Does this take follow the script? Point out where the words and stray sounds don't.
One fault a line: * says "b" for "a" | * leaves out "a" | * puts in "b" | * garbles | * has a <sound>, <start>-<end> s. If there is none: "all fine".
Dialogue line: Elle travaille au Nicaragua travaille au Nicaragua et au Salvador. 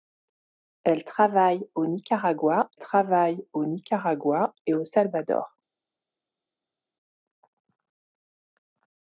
all fine